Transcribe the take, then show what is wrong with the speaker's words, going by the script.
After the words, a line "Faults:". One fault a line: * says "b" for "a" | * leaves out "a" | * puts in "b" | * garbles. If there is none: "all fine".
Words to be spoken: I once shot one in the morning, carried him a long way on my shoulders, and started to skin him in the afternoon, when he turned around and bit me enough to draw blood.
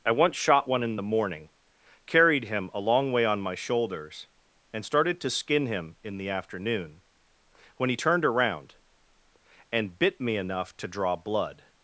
I once shot one in the morning, carried him a long way on my shoulders, and started to skin him in the afternoon, when he turned around and bit me enough to draw blood.
Faults:
all fine